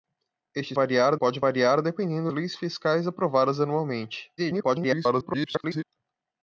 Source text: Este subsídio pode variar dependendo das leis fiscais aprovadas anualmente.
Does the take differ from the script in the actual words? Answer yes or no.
yes